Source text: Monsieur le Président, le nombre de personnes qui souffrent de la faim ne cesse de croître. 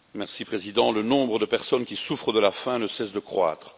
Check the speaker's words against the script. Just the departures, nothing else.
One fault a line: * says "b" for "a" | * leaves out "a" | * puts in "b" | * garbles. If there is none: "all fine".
all fine